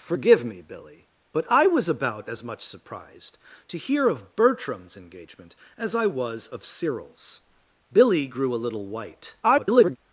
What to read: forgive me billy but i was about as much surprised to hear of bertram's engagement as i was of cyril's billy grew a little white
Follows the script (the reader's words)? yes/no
no